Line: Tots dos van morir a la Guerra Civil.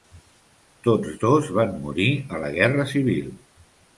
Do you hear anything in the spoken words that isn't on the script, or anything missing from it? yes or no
no